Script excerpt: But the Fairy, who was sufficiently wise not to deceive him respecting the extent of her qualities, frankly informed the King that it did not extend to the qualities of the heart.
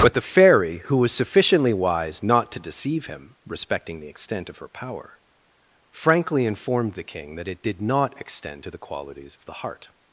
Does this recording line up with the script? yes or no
no